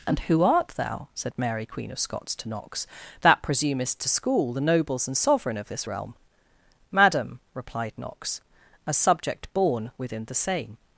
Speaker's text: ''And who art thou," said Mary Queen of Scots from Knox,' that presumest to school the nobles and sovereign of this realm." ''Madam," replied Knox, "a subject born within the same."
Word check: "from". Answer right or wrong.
wrong